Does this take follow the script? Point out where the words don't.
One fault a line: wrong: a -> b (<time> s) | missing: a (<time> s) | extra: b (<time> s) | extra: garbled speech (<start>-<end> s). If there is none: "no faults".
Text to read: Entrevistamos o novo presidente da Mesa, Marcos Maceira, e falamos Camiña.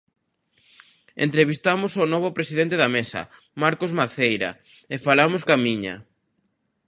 no faults